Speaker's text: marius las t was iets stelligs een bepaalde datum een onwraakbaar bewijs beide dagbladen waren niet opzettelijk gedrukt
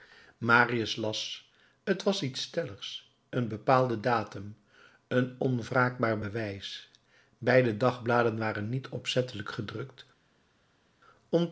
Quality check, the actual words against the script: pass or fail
pass